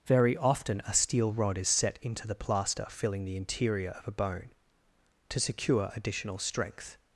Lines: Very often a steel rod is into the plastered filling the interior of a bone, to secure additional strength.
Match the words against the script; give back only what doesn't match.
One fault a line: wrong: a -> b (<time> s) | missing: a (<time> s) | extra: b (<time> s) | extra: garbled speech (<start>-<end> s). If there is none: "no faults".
extra: set (1.7 s)
wrong: plastered -> plaster (2.4 s)